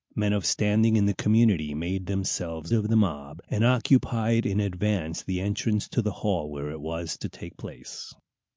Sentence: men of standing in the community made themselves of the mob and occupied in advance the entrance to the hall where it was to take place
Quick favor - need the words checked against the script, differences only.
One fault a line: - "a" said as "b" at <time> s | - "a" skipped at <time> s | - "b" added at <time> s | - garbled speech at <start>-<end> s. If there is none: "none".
none